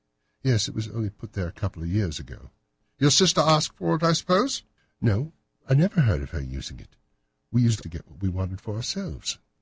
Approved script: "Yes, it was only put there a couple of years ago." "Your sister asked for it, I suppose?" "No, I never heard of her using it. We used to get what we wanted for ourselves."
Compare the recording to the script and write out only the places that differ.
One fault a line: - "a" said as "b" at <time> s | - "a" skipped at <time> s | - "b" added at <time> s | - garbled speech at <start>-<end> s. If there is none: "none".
none